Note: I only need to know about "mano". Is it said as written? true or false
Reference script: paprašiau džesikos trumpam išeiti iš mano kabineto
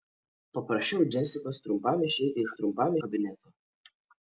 false